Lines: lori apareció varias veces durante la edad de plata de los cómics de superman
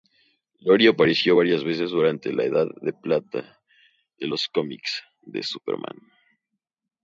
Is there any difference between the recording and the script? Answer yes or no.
no